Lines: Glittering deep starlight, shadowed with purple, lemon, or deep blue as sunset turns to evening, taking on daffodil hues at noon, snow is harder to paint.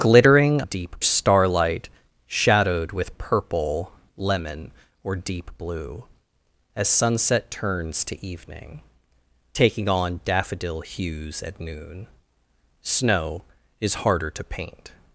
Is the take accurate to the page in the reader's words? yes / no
yes